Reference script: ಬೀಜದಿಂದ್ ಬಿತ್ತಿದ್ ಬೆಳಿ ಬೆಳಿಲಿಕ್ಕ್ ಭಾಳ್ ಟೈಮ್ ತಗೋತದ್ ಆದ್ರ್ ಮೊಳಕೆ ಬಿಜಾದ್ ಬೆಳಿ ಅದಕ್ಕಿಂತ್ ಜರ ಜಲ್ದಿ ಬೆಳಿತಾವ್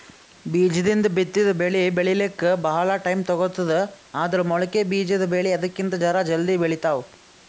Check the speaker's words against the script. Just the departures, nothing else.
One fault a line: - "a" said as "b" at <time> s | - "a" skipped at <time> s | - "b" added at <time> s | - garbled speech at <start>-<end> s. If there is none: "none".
none